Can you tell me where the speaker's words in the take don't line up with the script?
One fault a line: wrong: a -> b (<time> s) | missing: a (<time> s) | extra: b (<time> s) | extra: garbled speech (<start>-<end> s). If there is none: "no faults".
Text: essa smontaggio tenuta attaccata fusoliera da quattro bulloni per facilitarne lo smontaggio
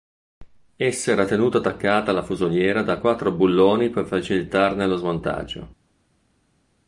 wrong: smontaggio -> era (1.1 s)
extra: alla (2.1 s)